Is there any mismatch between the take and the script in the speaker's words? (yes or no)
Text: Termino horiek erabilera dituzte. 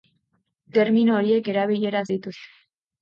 no